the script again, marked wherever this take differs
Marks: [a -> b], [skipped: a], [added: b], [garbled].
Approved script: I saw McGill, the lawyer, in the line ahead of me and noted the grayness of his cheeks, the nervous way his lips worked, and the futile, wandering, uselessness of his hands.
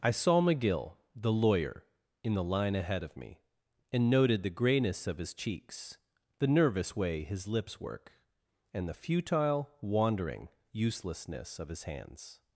I saw McGill, the lawyer, in the line ahead of me and noted the grayness of his cheeks, the nervous way his lips [worked, -> work] and the futile, wandering, uselessness of his hands.